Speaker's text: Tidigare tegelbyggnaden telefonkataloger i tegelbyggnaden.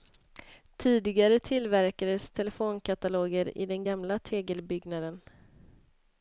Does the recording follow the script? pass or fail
fail